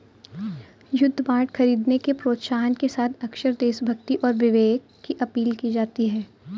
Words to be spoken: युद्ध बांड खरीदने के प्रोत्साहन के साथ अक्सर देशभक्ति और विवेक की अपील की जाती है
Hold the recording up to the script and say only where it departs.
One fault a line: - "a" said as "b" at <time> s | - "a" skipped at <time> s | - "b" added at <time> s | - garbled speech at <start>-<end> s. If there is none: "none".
none